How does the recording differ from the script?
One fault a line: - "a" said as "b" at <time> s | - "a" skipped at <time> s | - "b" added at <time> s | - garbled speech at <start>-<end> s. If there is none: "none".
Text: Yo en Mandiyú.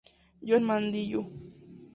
none